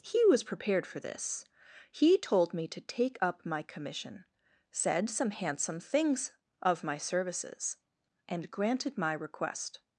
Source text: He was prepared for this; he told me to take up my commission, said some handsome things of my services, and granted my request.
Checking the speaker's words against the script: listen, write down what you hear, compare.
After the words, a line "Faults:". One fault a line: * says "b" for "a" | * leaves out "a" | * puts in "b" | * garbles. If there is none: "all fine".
He was prepared for this; he told me to take up my commission, said some handsome things of my services, and granted my request.
Faults:
all fine